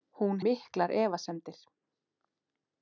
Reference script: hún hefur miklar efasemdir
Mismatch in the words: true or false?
true